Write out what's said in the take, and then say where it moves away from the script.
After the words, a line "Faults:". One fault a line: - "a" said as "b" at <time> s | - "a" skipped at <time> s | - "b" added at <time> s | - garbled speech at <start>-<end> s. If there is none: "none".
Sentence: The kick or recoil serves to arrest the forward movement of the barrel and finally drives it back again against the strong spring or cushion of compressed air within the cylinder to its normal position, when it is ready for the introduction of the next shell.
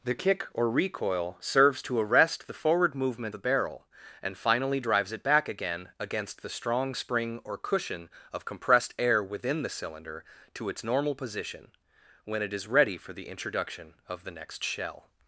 The kick or recoil serves to arrest the forward movement the barrel and finally drives it back again against the strong spring or cushion of compressed air within the cylinder to its normal position, when it is ready for the introduction of the next shell.
Faults:
- "of" skipped at 3.4 s